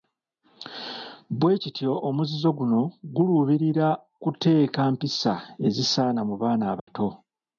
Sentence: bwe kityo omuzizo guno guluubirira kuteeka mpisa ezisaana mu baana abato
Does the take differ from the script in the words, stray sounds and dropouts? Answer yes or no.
yes